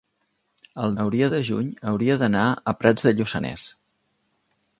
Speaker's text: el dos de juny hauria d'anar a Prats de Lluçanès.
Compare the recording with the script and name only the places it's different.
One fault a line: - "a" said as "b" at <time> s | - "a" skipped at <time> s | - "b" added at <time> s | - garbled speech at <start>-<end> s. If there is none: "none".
- "dos" said as "hauria" at 1.0 s